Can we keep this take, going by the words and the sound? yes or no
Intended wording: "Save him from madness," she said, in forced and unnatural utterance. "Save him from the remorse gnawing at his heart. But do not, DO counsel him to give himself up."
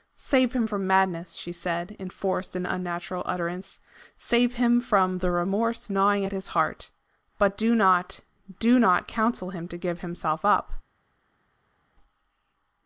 no